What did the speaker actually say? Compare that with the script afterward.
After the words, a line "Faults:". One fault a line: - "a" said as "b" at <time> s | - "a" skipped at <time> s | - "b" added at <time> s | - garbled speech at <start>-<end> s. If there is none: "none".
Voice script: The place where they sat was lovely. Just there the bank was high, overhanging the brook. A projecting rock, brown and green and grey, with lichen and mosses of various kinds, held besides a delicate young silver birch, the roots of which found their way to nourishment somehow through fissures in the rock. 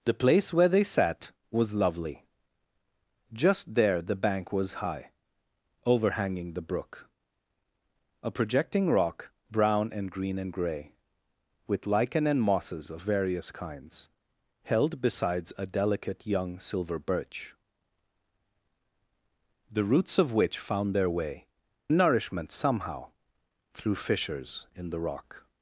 The place where they sat was lovely. Just there the bank was high, overhanging the brook. A projecting rock, brown and green and grey, with lichen and mosses of various kinds, held besides a delicate young silver birch, the roots of which found their way nourishment somehow through fissures in the rock.
Faults:
- "to" skipped at 21.4 s